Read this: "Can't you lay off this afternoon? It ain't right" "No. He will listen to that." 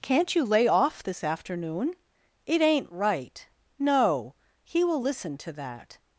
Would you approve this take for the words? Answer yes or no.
yes